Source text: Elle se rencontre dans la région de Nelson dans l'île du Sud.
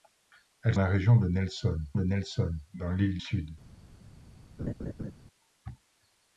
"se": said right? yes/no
no